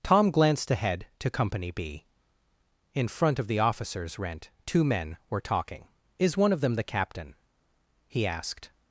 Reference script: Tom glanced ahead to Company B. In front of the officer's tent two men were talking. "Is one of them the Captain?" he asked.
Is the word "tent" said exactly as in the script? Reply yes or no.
no